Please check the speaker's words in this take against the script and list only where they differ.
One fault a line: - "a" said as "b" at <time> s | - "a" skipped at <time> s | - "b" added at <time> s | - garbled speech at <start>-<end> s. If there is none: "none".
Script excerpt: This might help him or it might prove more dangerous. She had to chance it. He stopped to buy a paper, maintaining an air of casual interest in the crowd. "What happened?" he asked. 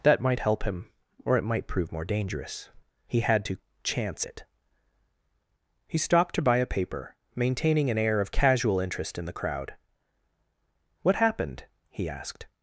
- "This" said as "That" at 0.0 s
- "She" said as "He" at 3.1 s